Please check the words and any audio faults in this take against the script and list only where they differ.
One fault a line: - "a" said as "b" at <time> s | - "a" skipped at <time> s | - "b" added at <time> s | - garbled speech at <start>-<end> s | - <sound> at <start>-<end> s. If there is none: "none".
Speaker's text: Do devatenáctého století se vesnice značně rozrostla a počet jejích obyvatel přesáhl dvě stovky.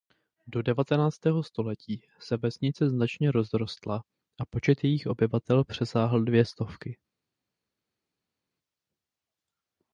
none